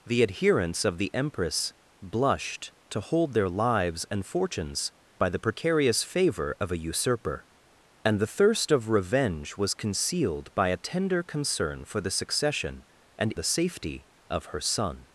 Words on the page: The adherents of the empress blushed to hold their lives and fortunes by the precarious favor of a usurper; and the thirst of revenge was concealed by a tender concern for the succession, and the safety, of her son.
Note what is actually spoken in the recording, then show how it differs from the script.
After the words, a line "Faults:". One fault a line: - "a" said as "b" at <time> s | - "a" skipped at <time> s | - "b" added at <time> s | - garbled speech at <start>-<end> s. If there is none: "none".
The adherents of the empress blushed to hold their lives and fortunes by the precarious favor of a usurper; and the thirst of revenge was concealed by a tender concern for the succession, and the safety, of her son.
Faults:
none